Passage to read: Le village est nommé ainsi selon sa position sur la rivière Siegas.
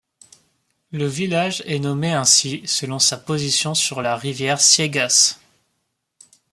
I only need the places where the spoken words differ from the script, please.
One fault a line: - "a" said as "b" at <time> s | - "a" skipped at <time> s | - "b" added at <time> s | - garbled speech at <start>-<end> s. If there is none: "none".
none